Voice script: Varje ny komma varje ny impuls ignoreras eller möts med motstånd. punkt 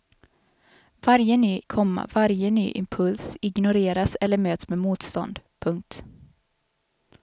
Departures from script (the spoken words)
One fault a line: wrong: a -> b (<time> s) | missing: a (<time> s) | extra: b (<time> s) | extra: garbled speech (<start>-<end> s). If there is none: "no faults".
no faults